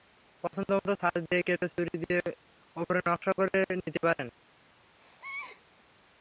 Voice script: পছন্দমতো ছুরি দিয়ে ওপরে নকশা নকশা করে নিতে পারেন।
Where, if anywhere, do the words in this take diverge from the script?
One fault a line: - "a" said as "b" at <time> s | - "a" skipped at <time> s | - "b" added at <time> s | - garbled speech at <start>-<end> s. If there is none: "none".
- "ছাঁচ দিয়ে কেটে" added at 1.0 s
- "নকশা" skipped at 3.3 s